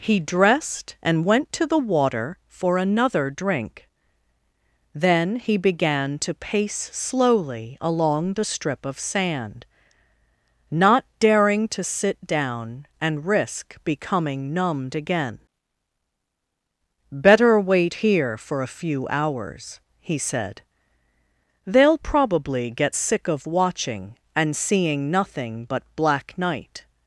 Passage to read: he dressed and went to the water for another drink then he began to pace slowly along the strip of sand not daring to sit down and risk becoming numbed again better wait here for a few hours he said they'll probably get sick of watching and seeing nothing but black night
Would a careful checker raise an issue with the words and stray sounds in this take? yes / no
no